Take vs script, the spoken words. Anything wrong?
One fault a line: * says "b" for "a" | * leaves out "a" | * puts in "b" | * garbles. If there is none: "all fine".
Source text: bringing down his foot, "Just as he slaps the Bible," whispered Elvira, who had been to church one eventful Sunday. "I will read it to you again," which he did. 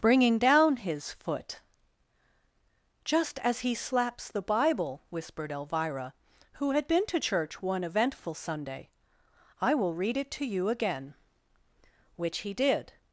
all fine